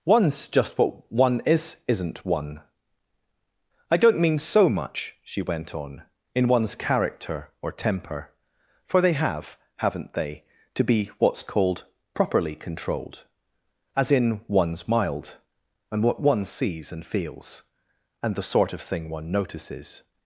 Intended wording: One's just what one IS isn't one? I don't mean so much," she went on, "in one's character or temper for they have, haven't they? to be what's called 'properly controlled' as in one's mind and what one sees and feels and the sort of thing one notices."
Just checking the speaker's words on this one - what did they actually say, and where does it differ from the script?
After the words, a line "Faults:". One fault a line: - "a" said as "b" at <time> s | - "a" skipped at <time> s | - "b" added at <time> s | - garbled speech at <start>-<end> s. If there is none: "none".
One's just what one IS isn't one? I don't mean so much," she went on, "in one's character or temper for they have, haven't they? to be what's called 'properly controlled' as in one's mild and what one sees and feels and the sort of thing one notices."
Faults:
- "mind" said as "mild" at 14.9 s